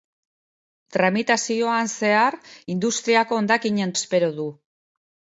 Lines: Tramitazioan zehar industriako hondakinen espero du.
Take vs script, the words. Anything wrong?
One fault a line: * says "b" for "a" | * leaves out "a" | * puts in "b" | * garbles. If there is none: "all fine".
all fine